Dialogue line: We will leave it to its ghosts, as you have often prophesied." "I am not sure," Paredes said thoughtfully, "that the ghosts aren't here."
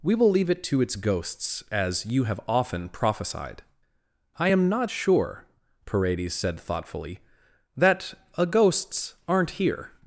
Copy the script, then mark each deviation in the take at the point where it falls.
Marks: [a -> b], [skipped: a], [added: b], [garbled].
We will leave it to its ghosts, as you have often prophesied." "I am not sure," Paredes said thoughtfully, "that [the -> a] ghosts aren't here."